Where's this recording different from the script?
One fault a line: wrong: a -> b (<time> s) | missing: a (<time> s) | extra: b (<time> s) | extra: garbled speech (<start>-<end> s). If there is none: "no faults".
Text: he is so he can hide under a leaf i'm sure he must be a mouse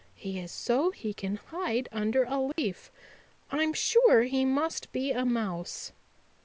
no faults